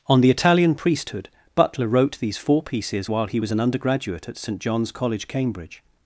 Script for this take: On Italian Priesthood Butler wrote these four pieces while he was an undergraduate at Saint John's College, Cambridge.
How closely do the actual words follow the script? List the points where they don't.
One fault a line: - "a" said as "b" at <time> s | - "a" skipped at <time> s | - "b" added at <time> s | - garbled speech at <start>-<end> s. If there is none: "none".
- "the" added at 0.2 s